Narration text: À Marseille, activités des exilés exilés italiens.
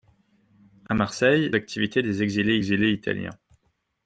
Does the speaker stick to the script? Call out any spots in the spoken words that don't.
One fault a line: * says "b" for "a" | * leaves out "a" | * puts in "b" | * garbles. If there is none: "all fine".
all fine